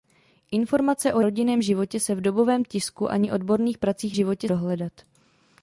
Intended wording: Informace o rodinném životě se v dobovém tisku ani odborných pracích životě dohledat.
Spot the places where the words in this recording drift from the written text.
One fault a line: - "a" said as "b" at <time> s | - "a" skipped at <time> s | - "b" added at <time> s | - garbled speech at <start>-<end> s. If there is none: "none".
none